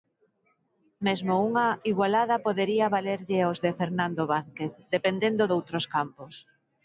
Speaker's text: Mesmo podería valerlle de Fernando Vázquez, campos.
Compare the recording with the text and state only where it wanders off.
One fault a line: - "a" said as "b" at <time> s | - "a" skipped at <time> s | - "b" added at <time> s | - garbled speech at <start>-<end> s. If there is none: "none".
- "unha igualada" added at 1.5 s
- "aos" added at 3.4 s
- "dependendo doutros" added at 5.0 s